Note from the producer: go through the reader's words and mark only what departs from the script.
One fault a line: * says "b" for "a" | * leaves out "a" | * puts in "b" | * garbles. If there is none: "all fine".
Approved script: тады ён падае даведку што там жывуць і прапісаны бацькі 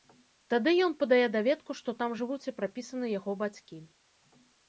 * puts in "яго"